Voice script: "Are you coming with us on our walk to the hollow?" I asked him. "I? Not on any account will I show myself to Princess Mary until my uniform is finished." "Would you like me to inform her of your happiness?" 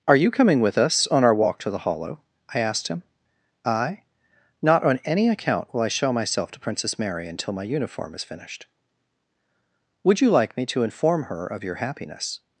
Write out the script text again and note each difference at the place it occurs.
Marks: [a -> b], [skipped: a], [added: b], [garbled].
"Are you coming with us on our walk to the hollow?" I asked him. "I? Not on any account will I show myself to Princess Mary until my uniform is finished." "Would you like me to inform her of your happiness?"